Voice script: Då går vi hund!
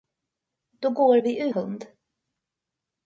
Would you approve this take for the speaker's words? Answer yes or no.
yes